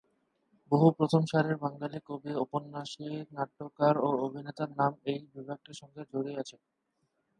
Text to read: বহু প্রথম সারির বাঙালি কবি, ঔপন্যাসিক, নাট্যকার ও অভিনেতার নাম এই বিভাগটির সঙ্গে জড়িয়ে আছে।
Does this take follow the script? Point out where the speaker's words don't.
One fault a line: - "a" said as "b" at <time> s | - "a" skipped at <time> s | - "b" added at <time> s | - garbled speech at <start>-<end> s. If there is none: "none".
none